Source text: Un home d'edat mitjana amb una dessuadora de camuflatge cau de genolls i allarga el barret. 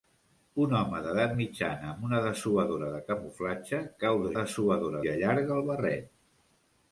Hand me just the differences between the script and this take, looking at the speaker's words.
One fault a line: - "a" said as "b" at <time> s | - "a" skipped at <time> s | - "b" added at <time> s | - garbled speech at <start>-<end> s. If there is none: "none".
- "genolls" said as "dessuadora" at 4.4 s